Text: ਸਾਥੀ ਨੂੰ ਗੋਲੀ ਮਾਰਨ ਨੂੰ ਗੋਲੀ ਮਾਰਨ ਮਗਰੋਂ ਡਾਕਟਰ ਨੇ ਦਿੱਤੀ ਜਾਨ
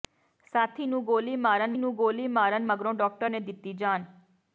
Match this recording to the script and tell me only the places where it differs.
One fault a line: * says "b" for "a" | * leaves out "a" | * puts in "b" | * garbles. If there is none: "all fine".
all fine